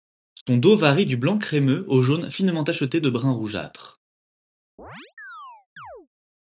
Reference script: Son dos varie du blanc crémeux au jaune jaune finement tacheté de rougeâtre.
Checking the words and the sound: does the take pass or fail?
fail